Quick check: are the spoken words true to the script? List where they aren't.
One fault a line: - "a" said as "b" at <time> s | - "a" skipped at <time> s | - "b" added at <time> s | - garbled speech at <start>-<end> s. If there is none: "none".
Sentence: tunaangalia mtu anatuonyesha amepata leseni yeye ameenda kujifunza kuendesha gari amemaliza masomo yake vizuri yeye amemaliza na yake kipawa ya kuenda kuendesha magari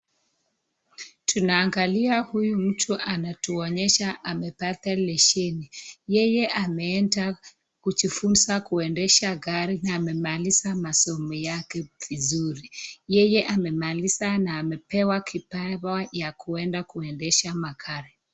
- "huyu" added at 2.2 s
- "na" added at 9.8 s
- "yake" said as "amepewa" at 14.6 s